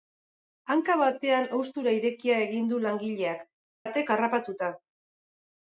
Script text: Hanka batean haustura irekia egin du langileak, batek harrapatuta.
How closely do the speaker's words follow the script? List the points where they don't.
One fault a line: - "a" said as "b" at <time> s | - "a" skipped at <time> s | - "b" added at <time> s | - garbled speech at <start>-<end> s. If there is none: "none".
none